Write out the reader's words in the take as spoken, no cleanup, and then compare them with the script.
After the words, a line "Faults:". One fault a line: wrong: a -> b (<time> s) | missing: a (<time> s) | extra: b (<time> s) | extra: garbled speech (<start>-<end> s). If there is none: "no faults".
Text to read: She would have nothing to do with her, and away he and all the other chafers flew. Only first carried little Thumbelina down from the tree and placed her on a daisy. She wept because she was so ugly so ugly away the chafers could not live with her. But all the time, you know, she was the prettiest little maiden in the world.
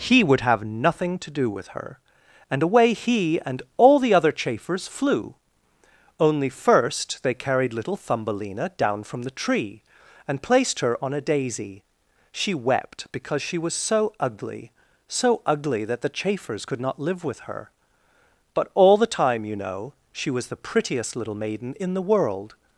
He would have nothing to do with her, and away he and all the other chafers flew. Only first they carried little Thumbelina down from the tree and placed her on a daisy. She wept because she was so ugly so ugly that the chafers could not live with her. But all the time, you know, she was the prettiest little maiden in the world.
Faults:
wrong: She -> He (0.0 s)
extra: they (7.2 s)
wrong: away -> that (15.8 s)